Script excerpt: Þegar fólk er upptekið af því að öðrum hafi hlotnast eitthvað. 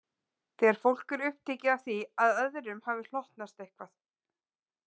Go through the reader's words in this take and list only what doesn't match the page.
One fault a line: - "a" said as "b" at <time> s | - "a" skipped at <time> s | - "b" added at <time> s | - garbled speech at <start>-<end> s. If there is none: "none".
none